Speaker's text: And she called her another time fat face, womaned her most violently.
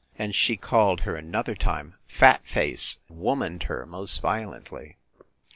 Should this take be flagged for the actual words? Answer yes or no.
no